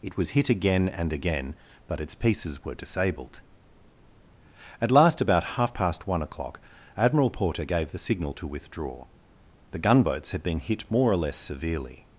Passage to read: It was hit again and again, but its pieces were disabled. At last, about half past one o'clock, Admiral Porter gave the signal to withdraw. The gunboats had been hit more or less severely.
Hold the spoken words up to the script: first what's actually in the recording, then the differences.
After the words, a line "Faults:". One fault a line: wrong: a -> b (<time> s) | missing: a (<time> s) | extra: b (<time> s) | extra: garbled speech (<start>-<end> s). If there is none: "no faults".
It was hit again and again, but its pieces were disabled. At last, about half past one o'clock, Admiral Porter gave the signal to withdraw. The gunboats had been hit more or less severely.
Faults:
no faults